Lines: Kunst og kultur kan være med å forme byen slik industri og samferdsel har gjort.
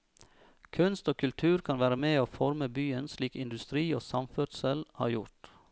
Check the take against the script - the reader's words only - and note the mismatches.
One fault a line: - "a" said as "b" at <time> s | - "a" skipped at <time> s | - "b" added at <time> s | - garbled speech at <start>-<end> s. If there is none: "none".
none